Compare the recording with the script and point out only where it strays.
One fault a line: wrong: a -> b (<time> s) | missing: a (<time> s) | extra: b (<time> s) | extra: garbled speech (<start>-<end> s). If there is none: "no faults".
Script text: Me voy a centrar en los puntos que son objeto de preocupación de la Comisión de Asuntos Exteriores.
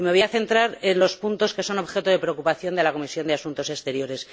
no faults